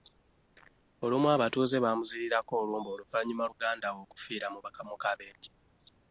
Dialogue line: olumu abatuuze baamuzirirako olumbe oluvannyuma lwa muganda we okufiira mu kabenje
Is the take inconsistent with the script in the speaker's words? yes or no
yes